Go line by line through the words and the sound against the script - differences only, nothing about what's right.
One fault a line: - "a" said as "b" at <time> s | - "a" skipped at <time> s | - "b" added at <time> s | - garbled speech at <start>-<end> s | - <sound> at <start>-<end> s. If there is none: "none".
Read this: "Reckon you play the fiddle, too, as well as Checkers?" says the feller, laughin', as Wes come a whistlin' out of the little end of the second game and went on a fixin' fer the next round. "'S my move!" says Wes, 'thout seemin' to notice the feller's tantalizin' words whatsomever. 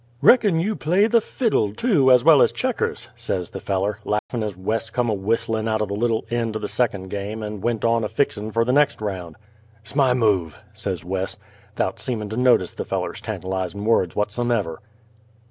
- dropout at 4.2-4.3 s